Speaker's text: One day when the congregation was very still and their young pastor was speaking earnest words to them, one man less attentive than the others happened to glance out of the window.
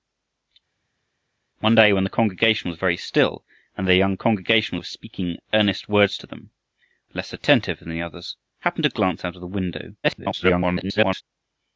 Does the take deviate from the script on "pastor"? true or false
true